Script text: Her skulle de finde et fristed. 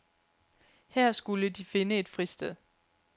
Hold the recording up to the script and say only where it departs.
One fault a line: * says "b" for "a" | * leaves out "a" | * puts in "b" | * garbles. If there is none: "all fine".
all fine